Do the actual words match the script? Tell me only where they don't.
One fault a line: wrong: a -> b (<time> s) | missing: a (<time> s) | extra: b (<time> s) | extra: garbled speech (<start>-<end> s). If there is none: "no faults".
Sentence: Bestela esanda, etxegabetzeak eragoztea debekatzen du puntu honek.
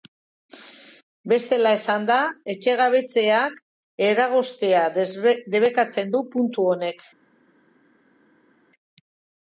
no faults